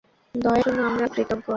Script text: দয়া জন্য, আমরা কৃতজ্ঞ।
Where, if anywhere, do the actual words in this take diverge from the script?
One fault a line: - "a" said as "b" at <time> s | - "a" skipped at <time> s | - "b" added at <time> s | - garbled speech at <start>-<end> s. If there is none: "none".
none